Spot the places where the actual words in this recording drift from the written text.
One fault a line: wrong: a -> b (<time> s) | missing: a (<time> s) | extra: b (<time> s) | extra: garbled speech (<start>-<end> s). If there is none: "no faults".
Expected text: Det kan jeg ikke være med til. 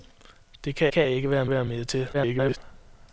extra: kan (0.9 s)
extra: være (1.5 s)
extra: garbled speech (2.1-2.6 s)